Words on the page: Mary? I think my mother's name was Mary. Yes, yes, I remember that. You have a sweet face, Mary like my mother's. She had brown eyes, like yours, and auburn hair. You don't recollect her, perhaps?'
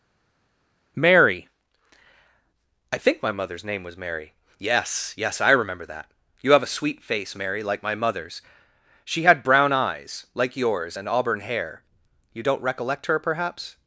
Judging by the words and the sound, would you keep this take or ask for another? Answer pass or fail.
pass